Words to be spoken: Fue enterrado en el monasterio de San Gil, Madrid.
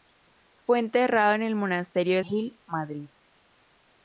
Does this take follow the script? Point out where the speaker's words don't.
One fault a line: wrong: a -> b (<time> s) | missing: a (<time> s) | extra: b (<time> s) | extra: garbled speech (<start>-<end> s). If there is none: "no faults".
missing: San (2.2 s)